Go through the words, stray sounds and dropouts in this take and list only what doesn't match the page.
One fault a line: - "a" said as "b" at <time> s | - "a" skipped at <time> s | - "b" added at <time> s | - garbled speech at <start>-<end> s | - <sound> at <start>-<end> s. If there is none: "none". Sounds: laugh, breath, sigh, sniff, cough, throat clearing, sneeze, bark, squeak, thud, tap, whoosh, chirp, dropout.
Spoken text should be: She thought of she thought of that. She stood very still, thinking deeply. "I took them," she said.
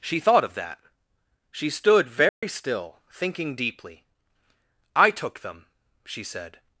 - "she thought of" skipped at 0.6 s
- dropout at 2.3-2.4 s